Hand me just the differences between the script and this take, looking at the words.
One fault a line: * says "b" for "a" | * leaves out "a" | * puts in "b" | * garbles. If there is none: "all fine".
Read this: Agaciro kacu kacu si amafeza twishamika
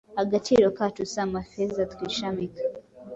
* leaves out "kacu"